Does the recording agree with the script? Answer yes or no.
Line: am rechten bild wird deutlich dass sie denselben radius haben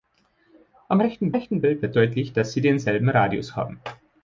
no